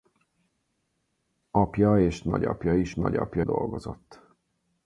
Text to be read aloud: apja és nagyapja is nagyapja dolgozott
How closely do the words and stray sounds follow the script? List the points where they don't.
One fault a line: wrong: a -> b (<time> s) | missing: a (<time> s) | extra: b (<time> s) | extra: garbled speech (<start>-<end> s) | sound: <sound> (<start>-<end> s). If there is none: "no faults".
no faults